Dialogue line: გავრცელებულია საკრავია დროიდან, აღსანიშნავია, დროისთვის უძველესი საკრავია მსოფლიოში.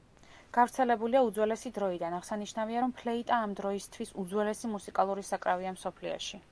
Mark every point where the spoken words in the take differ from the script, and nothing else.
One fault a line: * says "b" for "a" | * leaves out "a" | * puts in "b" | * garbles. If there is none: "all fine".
* says "უძველესი" for "საკრავია"
* puts in "რომ ფლეიტა ამ"
* puts in "მუსიკალური"